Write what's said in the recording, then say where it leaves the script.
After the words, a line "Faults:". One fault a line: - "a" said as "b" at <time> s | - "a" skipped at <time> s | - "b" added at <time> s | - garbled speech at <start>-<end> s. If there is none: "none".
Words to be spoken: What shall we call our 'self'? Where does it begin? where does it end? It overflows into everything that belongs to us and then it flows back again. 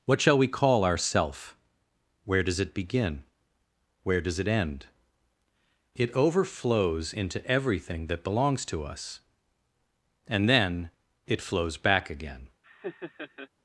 What shall we call our 'self'? Where does it begin? where does it end? It overflows into everything that belongs to us and then it flows back again.
Faults:
none